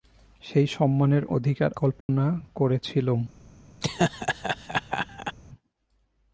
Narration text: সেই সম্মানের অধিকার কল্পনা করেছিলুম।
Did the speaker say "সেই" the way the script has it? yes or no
yes